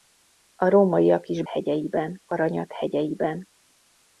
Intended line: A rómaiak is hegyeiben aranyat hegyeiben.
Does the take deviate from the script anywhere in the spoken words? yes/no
no